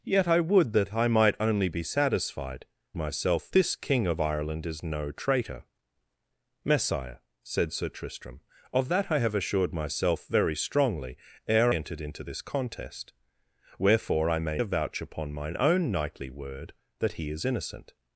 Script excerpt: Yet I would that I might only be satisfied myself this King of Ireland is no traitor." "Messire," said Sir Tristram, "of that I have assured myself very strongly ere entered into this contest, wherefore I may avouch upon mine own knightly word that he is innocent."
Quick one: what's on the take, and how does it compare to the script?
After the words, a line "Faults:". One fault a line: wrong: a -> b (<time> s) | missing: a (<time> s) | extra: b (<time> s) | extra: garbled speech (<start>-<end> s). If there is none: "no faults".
Yet I would that I might only be satisfied myself this King of Ireland is no traitor." "Messire," said Sir Tristram, "of that I have assured myself very strongly ere entered into this contest, wherefore I may avouch upon mine own knightly word that he is innocent."
Faults:
no faults